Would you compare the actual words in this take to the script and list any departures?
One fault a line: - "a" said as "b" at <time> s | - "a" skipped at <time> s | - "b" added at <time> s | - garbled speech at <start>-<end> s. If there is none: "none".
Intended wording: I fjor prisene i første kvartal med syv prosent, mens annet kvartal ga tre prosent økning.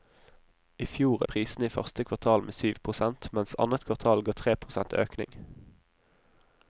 none